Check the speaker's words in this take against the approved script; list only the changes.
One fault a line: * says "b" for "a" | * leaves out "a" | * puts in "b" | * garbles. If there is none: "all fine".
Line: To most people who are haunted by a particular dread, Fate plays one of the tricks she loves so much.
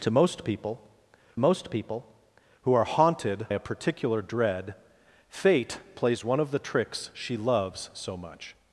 * puts in "most people"
* leaves out "by"